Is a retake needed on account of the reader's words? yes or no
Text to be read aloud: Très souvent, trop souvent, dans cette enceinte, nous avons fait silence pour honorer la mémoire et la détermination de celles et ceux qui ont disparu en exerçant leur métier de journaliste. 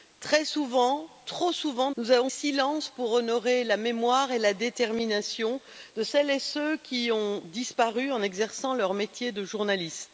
yes